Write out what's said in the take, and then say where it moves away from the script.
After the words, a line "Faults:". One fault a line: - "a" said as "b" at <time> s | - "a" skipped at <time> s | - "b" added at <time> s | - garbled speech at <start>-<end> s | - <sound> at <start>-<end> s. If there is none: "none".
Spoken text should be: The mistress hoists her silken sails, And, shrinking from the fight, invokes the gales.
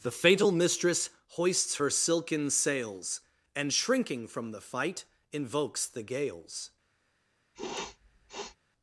The fatal mistress hoists her silken sails, And, shrinking from the fight, invokes the gales.
Faults:
- "fatal" added at 0.1 s
- sniff at 7.5-8.6 s